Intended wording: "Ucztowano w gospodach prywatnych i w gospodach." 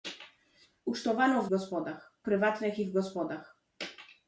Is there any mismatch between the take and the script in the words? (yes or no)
no